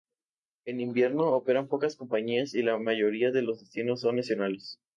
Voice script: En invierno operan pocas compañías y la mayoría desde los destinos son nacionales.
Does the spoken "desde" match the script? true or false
false